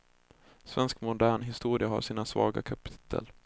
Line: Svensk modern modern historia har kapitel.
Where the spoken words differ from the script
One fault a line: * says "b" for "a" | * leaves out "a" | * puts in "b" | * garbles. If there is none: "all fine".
* leaves out "modern"
* puts in "sina svaga"